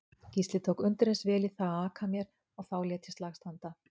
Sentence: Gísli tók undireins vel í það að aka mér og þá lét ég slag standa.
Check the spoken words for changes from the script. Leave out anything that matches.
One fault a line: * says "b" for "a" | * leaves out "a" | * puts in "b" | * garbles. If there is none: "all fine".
all fine